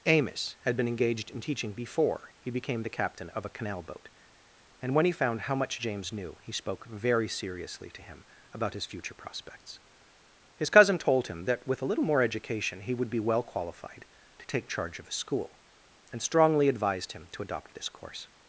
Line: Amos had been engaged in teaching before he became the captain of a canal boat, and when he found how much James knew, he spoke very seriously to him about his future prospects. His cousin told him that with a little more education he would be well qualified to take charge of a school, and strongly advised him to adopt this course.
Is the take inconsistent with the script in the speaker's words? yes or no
no